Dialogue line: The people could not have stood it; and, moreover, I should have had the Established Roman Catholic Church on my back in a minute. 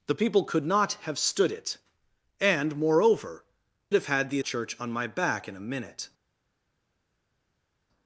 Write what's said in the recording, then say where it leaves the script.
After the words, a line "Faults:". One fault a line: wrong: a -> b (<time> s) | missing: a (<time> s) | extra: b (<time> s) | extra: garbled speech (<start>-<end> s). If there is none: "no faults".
The people could not have stood it; and, moreover, have had the Church on my back in a minute.
Faults:
missing: I should (3.4 s)
missing: Established Roman Catholic (4.4 s)